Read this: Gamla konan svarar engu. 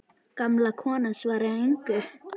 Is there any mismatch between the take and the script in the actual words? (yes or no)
no